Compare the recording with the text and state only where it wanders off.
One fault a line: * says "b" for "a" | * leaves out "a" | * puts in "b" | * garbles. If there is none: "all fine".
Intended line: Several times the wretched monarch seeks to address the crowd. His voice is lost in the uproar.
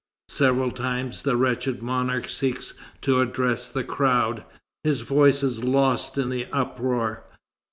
all fine